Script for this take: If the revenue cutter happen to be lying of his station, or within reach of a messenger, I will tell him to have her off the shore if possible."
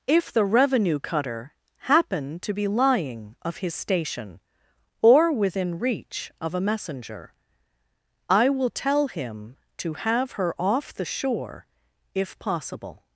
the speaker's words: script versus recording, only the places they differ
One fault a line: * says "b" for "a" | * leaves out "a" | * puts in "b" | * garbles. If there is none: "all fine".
all fine